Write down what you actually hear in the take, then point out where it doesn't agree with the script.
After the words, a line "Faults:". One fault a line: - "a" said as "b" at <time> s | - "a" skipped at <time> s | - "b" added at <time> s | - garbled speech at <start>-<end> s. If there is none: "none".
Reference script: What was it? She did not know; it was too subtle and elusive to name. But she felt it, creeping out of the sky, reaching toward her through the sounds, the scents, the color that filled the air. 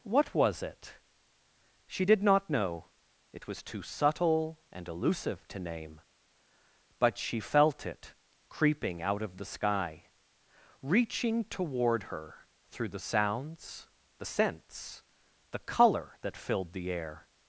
What was it? She did not know; it was too subtle and elusive to name. But she felt it, creeping out of the sky, reaching toward her through the sounds, the scents, the color that filled the air.
Faults:
none